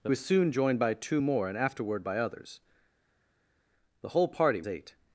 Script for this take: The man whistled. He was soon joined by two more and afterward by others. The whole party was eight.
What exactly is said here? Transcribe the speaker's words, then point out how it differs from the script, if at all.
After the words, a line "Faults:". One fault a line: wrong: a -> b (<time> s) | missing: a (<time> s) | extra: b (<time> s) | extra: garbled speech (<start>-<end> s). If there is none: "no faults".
The was soon joined by two more and afterward by others. The whole party eight.
Faults:
missing: man whistled He (0.1 s)
missing: was (4.6 s)